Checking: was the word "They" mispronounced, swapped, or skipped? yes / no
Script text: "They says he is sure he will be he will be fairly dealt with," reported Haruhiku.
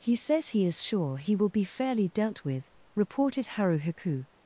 yes